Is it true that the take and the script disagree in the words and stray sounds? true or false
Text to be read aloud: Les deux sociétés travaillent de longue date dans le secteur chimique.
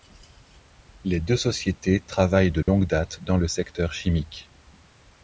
true